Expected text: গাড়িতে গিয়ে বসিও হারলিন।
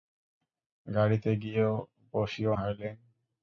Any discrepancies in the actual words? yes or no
no